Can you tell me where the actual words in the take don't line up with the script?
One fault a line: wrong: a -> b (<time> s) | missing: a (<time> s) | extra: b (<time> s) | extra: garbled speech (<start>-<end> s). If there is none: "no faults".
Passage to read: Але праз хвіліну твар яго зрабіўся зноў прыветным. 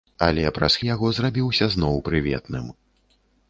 missing: хвіліну твар (0.8 s)